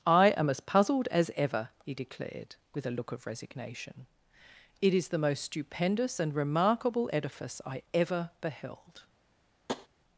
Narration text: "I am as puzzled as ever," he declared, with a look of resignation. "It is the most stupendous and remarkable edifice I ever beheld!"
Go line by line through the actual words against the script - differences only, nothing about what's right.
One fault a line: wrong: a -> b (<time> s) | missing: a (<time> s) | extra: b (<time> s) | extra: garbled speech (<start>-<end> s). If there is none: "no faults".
no faults